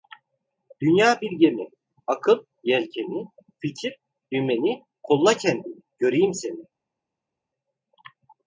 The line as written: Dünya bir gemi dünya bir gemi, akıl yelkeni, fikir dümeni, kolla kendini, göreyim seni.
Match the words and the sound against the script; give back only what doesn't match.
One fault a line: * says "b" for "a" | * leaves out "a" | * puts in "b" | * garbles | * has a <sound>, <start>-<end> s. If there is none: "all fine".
* leaves out "dünya bir gemi"